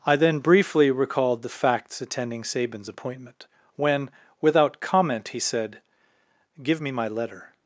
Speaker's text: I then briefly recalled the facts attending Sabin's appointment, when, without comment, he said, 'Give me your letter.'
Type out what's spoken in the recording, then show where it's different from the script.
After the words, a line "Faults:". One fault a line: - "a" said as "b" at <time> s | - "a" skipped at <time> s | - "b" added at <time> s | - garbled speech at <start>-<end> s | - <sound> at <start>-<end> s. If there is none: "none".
I then briefly recalled the facts attending Sabin's appointment, when, without comment, he said, 'Give me my letter.'
Faults:
- "your" said as "my" at 6.9 s